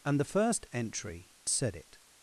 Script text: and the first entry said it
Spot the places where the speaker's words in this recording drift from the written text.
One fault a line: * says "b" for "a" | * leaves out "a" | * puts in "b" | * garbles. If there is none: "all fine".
all fine